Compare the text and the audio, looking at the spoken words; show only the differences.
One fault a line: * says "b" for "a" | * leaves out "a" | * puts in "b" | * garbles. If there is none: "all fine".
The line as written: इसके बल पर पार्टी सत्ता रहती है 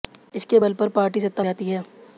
all fine